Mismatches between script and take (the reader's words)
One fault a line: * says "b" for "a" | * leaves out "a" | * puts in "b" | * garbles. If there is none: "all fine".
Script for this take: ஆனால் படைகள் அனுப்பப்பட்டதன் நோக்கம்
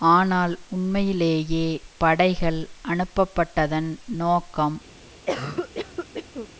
* puts in "உண்மையிலேயே"